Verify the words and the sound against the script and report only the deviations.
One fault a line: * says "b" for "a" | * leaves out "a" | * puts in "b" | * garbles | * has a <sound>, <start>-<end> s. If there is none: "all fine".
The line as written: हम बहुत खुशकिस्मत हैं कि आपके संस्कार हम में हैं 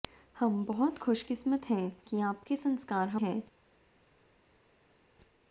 * leaves out "में"